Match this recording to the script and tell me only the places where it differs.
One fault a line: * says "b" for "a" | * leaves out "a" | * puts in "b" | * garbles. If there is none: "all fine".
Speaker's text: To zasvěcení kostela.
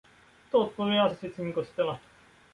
* puts in "odpovídá"